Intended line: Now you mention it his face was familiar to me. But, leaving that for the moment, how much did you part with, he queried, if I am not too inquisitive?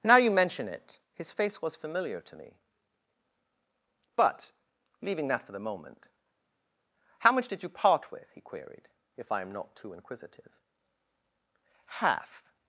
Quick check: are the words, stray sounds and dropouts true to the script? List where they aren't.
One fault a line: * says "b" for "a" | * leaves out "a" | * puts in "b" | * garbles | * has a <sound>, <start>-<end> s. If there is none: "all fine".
* puts in "Half"